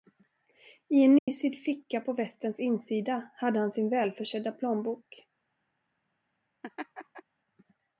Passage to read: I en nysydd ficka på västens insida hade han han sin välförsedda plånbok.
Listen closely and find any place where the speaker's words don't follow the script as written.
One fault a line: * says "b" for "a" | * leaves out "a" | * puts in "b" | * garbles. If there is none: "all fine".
* leaves out "han"